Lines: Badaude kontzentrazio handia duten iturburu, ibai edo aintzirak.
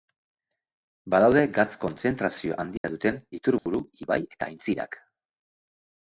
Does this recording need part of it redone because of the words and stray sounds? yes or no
yes